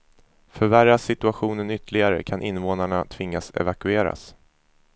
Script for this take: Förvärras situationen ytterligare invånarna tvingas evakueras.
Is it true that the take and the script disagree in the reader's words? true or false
true